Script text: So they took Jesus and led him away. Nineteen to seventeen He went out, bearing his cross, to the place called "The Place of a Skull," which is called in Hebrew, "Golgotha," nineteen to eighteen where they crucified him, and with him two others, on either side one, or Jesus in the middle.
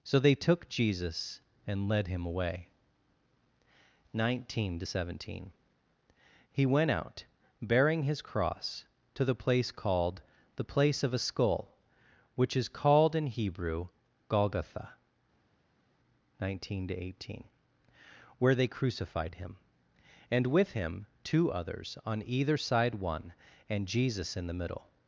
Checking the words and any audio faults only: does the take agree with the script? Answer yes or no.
no